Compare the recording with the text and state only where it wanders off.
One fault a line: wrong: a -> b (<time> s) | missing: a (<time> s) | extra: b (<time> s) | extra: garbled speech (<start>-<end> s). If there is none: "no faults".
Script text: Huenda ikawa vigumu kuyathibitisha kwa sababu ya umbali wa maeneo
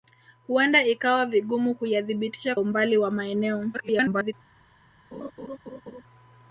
missing: kwa sababu ya (2.5 s)
extra: garbled speech (3.7-4.3 s)